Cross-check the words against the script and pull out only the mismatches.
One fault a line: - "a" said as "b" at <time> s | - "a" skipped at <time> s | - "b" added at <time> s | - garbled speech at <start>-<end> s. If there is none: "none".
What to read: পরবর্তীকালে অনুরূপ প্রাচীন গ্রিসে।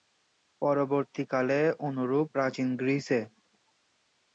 none